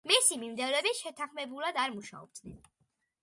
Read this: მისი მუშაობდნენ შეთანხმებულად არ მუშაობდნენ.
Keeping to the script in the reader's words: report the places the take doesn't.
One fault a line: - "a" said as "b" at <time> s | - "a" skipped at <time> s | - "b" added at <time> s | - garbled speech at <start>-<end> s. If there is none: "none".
- "მუშაობდნენ" said as "მიმდევრები" at 0.4 s